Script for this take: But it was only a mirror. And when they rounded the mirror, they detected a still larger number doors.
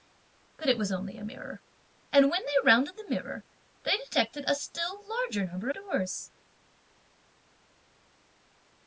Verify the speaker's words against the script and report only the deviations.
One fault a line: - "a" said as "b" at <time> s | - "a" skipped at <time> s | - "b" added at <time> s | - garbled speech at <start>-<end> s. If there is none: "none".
none